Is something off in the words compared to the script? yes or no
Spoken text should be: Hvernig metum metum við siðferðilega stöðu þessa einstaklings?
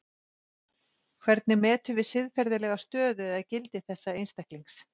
yes